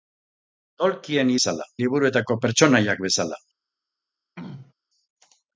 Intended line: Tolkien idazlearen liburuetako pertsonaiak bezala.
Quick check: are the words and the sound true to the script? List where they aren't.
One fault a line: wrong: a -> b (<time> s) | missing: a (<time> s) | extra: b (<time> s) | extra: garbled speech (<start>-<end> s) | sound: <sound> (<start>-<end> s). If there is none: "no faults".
wrong: idazlearen -> bezala (1.4 s)
sound: throat clearing (4.4-4.7 s)